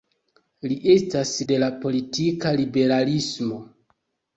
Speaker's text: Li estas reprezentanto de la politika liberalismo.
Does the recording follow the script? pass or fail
fail